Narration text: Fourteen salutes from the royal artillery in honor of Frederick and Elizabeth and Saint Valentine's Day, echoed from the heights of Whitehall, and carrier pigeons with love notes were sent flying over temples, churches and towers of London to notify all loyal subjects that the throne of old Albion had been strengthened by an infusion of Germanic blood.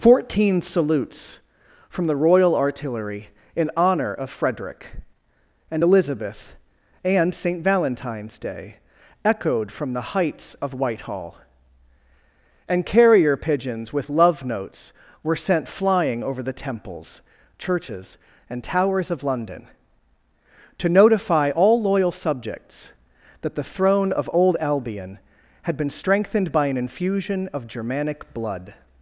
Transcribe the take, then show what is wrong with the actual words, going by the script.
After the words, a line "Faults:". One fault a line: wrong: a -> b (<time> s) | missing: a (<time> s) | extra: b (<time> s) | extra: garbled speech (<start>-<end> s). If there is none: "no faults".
Fourteen salutes from the royal artillery in honor of Frederick and Elizabeth and Saint Valentine's Day, echoed from the heights of Whitehall, and carrier pigeons with love notes were sent flying over the temples, churches and towers of London to notify all loyal subjects that the throne of old Albion had been strengthened by an infusion of Germanic blood.
Faults:
extra: the (16.4 s)